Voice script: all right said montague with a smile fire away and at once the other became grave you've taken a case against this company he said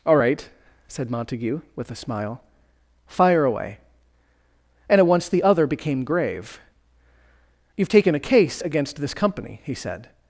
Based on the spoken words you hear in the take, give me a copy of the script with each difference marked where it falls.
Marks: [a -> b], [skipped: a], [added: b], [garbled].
all right said montague with a smile fire away and at once the other became grave you've taken a case against this company he said